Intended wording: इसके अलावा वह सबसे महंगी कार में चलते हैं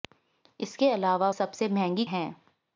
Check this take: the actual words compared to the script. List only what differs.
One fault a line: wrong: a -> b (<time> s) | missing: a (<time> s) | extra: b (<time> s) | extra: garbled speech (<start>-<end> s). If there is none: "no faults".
missing: वह (1.3 s)
missing: कार में चलते (2.0 s)